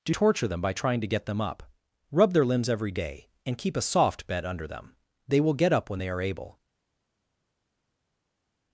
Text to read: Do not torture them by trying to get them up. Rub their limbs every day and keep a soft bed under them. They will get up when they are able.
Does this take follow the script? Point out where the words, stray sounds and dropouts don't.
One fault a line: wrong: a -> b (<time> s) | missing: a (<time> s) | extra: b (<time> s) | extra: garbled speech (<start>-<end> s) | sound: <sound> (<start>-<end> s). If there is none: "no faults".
missing: not (0.1 s)